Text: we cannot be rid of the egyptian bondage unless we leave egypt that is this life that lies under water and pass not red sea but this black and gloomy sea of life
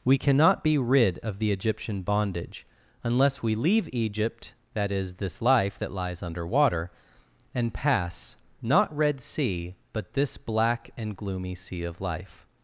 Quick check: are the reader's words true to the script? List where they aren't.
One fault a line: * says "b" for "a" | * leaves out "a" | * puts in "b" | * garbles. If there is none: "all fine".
all fine